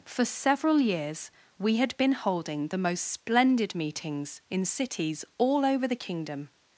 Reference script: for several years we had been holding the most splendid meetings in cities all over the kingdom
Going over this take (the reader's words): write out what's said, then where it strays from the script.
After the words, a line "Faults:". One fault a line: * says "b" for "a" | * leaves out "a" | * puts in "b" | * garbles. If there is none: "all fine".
for several years we had been holding the most splendid meetings in cities all over the kingdom
Faults:
all fine